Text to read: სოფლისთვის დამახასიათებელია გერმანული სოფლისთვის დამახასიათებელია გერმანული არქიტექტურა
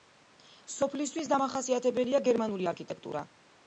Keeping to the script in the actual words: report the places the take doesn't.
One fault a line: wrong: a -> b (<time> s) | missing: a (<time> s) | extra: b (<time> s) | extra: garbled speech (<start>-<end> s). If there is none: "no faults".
missing: სოფლისთვის დამახასიათებელია გერმანული (2.7 s)